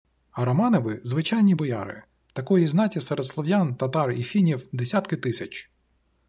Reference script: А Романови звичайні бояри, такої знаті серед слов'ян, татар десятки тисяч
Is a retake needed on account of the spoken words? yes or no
yes